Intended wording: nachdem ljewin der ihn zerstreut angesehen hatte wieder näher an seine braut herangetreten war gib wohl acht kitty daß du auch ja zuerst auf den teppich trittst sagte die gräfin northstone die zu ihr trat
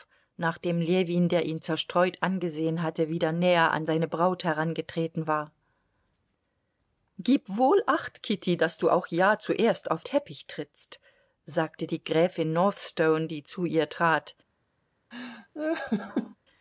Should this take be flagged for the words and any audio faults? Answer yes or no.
yes